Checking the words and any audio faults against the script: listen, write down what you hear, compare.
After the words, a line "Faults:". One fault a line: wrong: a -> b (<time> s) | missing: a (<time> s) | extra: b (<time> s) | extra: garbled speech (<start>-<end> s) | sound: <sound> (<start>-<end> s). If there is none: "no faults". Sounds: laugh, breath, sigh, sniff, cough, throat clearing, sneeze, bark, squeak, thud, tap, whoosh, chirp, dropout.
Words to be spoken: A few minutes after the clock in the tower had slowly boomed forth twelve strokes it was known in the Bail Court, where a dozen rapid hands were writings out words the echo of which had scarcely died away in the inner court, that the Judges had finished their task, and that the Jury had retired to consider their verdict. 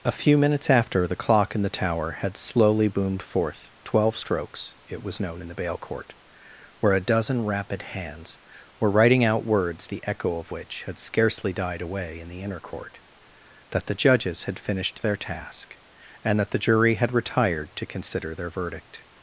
A few minutes after the clock in the tower had slowly boomed forth twelve strokes it was known in the Bail Court, where a dozen rapid hands were writing out words the echo of which had scarcely died away in the inner court, that the Judges had finished their task, and that the Jury had retired to consider their verdict.
Faults:
wrong: writings -> writing (8.9 s)